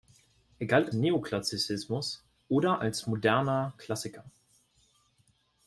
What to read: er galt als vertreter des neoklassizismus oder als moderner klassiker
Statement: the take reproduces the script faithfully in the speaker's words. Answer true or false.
false